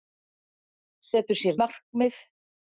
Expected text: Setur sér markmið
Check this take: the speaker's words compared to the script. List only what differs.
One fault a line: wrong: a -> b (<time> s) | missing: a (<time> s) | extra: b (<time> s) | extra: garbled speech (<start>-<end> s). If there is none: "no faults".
no faults